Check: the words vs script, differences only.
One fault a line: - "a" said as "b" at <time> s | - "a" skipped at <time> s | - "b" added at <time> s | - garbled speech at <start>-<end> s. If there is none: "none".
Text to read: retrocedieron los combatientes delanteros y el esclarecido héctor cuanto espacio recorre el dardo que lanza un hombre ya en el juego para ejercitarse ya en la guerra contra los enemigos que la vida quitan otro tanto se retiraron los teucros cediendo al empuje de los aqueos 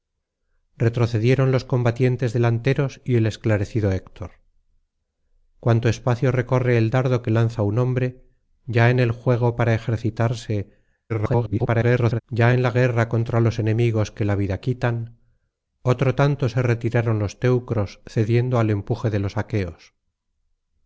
- garbled speech at 11.1-12.2 s